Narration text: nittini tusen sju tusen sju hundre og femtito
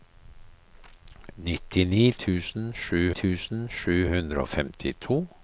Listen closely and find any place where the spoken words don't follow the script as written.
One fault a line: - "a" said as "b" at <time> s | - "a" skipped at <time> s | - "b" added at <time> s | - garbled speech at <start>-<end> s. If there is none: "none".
none